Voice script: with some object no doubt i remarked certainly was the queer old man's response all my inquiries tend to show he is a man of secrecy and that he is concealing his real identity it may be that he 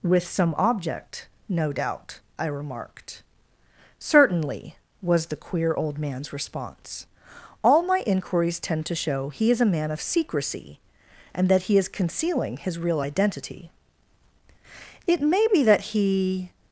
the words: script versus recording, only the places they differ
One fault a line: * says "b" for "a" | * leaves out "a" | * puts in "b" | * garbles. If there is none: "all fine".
all fine